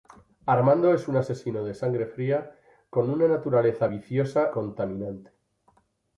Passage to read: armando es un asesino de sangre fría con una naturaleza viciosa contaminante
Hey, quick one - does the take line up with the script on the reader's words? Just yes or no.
yes